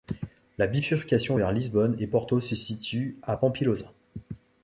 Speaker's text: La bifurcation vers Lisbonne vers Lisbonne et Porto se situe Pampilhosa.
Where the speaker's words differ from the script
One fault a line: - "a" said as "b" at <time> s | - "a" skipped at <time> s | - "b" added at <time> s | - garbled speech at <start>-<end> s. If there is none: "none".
- "vers Lisbonne" skipped at 2.0 s
- "à" added at 3.2 s